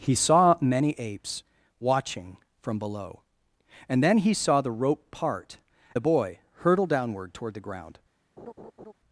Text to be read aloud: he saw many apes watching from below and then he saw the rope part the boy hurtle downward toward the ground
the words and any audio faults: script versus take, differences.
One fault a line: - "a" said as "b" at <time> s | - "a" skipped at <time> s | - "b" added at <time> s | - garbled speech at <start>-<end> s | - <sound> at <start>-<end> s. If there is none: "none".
- laugh at 8.4-8.9 s